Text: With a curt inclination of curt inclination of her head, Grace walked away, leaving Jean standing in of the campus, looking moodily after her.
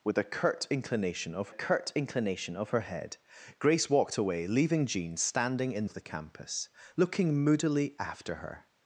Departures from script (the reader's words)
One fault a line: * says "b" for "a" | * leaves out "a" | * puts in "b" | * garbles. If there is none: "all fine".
all fine